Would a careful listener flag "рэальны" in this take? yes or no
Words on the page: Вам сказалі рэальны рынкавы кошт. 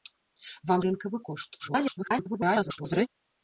yes